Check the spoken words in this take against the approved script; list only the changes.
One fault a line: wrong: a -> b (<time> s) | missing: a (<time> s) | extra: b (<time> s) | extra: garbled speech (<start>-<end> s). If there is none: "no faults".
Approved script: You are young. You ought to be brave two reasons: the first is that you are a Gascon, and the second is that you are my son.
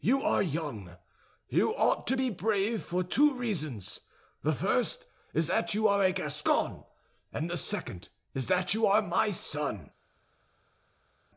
extra: for (2.8 s)